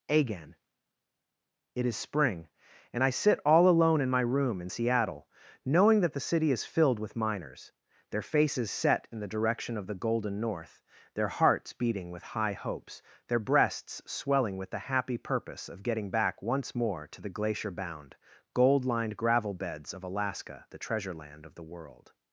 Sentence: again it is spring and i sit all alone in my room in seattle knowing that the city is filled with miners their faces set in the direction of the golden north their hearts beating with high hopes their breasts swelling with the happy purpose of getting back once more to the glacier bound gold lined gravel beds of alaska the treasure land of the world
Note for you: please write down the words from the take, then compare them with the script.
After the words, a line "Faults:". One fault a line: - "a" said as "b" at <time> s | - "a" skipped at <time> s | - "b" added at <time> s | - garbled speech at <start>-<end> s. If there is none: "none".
again it is spring and i sit all alone in my room in seattle knowing that the city is filled with miners their faces set in the direction of the golden north their hearts beating with high hopes their breasts swelling with the happy purpose of getting back once more to the glacier bound gold lined gravel beds of alaska the treasure land of the world
Faults:
none